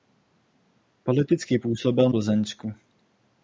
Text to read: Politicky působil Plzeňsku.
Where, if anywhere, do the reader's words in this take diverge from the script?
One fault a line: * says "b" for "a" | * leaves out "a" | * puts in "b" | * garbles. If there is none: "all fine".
all fine